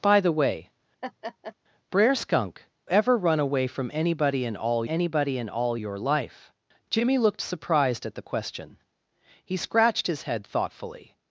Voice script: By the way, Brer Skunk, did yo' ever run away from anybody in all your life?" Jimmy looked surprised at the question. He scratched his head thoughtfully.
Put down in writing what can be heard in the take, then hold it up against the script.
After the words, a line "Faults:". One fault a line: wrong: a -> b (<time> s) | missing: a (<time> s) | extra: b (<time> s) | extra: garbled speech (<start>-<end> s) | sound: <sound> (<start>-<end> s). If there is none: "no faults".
By the way, Brer Skunk' ever run away from anybody in all anybody in all your life?" Jimmy looked surprised at the question. He scratched his head thoughtfully.
Faults:
sound: laugh (1.0-1.5 s)
missing: did yo (2.6 s)
extra: anybody in all (4.9 s)